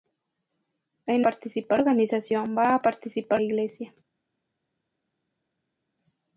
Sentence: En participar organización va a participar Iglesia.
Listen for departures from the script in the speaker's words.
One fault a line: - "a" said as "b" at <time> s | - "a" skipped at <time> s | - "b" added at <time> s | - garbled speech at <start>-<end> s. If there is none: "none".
none